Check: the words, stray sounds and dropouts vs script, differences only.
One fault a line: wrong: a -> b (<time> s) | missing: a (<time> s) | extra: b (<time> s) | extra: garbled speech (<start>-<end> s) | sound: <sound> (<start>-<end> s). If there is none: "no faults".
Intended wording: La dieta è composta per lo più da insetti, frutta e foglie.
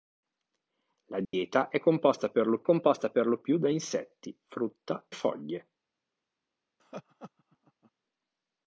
sound: dropout (1.2-1.3 s)
extra: composta per lo (2.6 s)
missing: e (5.1 s)
sound: laugh (6.8-7.9 s)